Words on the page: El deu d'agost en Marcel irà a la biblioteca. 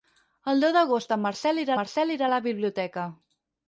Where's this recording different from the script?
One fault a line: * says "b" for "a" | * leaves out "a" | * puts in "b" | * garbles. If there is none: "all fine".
* puts in "Marcel irà"